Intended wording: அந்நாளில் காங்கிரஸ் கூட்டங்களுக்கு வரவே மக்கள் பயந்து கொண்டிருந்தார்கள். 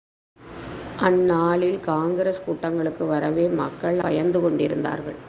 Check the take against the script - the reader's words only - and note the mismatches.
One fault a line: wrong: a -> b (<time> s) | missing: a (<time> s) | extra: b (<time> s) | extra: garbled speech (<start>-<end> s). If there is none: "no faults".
no faults